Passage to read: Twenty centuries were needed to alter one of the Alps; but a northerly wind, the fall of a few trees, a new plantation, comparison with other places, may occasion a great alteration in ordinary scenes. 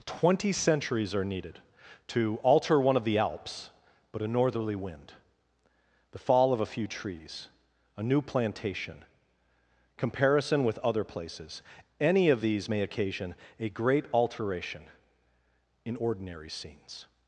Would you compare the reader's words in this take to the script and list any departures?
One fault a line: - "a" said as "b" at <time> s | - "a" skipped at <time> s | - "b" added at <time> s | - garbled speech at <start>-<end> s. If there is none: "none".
- "were" said as "are" at 1.1 s
- "any of these" added at 12.0 s